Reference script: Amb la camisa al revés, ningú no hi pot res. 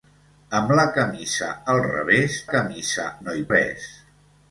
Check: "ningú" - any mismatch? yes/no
yes